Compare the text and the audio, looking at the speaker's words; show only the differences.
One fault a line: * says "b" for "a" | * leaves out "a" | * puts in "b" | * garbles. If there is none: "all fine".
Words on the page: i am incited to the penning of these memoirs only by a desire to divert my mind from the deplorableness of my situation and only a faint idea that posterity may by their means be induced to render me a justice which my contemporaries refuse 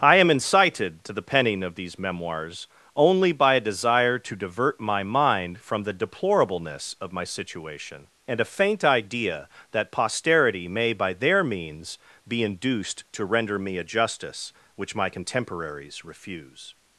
* leaves out "only"